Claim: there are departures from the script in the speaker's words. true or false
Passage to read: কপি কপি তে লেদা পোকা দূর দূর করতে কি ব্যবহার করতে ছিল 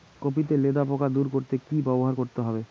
true